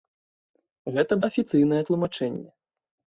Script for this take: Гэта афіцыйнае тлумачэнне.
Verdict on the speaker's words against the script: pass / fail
pass